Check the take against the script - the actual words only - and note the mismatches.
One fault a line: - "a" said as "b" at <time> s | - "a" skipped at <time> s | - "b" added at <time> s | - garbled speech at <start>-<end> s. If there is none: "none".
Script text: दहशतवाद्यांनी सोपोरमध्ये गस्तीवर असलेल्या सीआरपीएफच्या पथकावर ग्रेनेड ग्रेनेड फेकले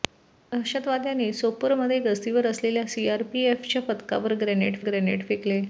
none